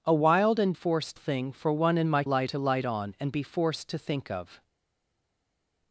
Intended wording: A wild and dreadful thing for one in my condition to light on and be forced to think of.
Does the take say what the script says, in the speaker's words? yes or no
no